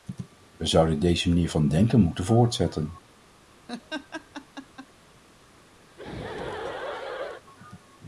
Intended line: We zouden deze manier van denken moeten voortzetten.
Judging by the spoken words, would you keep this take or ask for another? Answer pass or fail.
pass